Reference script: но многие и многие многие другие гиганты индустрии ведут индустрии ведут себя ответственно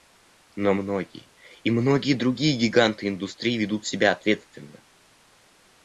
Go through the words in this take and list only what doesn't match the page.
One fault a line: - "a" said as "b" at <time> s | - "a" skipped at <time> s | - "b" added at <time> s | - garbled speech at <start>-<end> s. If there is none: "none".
- "многие" skipped at 2.1 s
- "индустрии ведут" skipped at 3.9 s